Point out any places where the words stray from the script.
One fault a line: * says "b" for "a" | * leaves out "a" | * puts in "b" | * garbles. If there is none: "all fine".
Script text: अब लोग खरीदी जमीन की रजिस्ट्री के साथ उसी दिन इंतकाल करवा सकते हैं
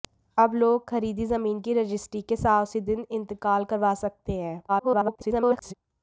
* garbles